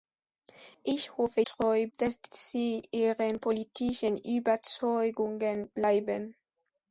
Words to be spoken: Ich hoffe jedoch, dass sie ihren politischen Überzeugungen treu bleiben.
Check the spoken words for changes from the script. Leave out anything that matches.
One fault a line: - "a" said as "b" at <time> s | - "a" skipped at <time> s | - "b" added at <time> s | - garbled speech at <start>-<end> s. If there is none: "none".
- "jedoch" said as "treu" at 1.5 s
- "treu" skipped at 5.7 s